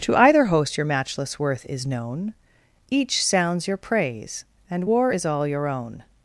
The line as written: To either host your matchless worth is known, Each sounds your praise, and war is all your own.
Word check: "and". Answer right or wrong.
right